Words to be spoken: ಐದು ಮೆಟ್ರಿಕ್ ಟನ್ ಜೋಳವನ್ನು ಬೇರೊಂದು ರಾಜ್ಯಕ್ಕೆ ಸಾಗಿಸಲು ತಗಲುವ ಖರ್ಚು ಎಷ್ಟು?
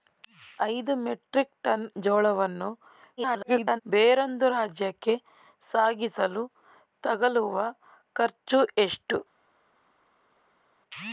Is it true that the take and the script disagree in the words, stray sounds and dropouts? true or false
true